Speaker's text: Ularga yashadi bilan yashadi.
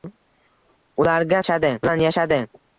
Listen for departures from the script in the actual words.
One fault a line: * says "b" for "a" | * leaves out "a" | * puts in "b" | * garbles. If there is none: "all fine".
all fine